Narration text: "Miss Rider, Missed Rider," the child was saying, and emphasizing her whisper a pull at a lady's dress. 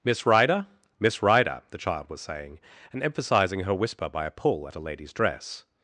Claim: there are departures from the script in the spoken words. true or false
true